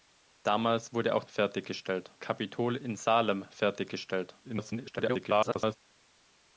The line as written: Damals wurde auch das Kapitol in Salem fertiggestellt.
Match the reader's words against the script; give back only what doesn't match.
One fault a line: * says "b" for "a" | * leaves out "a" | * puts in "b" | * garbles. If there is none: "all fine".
* says "fertiggestellt" for "das"
* garbles